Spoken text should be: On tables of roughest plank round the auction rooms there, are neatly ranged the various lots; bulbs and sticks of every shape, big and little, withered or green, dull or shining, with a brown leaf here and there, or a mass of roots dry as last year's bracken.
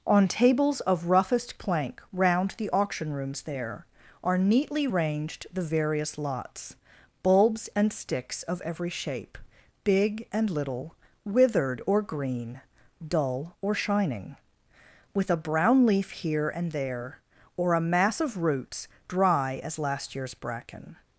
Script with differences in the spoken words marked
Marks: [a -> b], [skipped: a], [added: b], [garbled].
On tables of roughest plank round the auction rooms there, are neatly ranged the various lots; bulbs and sticks of every shape, big and little, withered or green, dull or shining, with a brown leaf here and there, or a mass of roots dry as last year's bracken.